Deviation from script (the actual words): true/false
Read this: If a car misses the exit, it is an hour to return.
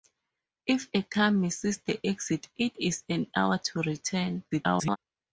true